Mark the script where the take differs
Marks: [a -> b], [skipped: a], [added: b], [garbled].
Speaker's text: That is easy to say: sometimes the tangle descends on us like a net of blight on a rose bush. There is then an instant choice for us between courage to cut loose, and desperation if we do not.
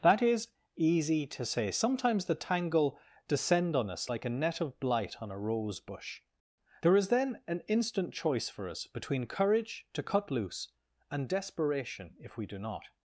That is easy to say: sometimes the tangle [descends -> descend] on us like a net of blight on a rose bush. There is then an instant choice for us between courage to cut loose, and desperation if we do not.